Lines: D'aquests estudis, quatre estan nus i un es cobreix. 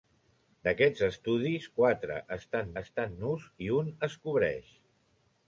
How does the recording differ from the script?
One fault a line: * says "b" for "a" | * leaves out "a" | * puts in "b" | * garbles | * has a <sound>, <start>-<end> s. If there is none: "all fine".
* puts in "estan"